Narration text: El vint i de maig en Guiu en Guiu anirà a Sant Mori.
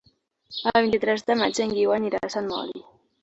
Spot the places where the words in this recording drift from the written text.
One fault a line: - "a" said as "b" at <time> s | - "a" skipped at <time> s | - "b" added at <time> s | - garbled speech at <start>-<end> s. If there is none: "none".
- "tres" added at 1.0 s
- "en Guiu" skipped at 1.9 s